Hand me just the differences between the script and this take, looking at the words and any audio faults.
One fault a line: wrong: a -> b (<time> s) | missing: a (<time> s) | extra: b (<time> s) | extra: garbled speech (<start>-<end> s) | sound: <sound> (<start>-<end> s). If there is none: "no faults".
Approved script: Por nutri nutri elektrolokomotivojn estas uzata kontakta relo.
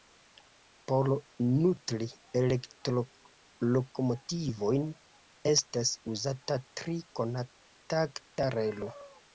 missing: nutri (2.1 s)
extra: tri (6.8 s)